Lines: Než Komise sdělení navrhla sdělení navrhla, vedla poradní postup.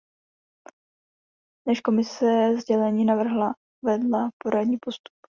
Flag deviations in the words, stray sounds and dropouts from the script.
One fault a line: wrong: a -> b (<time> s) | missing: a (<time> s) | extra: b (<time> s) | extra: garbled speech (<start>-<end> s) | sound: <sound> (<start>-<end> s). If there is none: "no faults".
missing: sdělení navrhla (3.5 s)